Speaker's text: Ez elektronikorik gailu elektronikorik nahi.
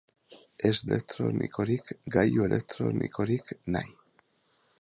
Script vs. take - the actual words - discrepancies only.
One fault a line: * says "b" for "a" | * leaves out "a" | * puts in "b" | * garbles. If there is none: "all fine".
all fine